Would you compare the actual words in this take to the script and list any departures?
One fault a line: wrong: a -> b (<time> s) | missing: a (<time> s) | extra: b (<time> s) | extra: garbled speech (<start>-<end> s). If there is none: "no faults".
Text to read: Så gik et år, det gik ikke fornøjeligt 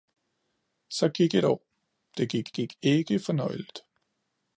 extra: gik (2.5 s)